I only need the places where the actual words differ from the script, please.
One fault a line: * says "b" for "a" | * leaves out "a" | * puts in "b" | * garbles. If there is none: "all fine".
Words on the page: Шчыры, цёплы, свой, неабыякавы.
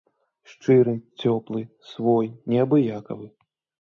all fine